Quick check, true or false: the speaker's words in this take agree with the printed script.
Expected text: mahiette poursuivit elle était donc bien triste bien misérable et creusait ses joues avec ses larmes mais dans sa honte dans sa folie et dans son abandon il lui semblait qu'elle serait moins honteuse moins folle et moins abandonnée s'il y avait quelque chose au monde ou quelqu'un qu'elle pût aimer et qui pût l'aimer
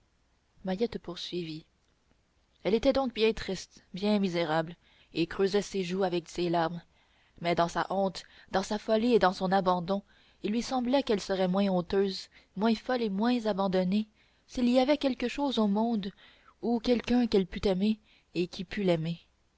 true